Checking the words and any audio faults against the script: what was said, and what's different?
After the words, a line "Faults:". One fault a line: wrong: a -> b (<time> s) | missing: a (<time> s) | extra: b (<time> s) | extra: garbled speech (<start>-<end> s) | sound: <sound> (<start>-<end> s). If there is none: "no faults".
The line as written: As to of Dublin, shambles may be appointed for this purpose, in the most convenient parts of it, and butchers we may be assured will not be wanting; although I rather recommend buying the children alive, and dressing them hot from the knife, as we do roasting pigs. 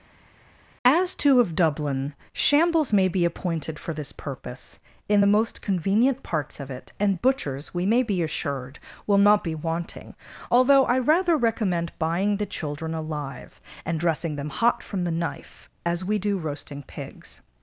As to of Dublin, shambles may be appointed for this purpose, in the most convenient parts of it, and butchers we may be assured will not be wanting; although I rather recommend buying the children alive, and dressing them hot from the knife, as we do roasting pigs.
Faults:
no faults